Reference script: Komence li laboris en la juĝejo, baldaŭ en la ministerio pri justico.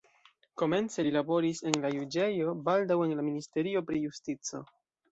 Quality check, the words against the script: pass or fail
pass